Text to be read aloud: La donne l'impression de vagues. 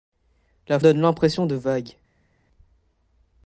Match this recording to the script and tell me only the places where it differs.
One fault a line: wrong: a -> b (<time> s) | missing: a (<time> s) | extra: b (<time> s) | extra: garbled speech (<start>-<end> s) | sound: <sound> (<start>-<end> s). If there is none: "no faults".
no faults